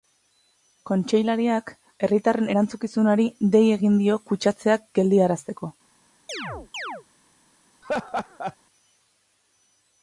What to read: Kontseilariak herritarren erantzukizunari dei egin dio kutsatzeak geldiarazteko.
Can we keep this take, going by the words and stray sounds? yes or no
no